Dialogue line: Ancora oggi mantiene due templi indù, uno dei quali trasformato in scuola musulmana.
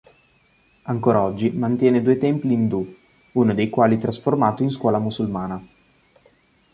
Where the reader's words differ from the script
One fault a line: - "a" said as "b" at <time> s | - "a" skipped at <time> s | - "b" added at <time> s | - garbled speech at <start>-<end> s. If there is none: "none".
none